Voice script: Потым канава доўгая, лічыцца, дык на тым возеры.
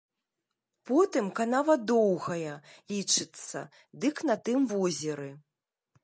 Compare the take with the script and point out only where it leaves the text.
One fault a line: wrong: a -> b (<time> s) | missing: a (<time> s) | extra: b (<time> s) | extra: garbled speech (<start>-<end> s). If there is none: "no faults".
no faults